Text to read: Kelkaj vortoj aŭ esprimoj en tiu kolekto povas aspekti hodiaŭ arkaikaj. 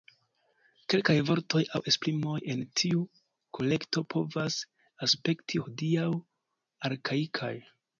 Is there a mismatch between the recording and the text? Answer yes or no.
no